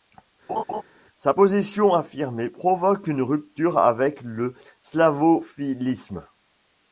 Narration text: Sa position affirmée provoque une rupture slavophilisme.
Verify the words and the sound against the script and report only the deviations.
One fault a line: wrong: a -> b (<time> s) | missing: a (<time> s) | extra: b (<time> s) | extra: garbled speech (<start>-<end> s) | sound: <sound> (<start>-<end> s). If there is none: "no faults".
sound: laugh (0.5-0.8 s)
extra: avec le (3.8 s)